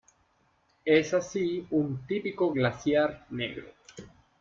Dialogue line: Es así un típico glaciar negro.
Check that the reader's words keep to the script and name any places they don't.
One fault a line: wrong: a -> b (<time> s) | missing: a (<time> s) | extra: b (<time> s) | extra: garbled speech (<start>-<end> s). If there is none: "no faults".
no faults